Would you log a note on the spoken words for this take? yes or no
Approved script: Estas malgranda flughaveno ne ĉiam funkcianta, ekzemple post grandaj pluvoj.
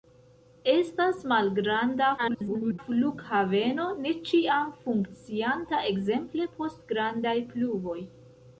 yes